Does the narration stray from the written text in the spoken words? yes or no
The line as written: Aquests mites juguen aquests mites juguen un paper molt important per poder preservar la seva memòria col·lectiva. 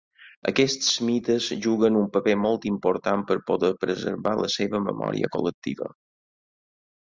yes